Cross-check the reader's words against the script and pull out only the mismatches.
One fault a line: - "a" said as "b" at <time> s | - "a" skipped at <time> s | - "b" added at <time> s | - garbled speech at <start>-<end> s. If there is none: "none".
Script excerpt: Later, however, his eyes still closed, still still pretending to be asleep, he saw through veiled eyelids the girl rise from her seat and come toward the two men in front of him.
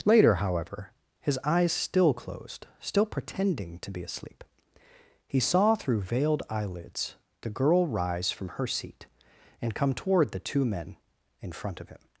- "still" skipped at 3.0 s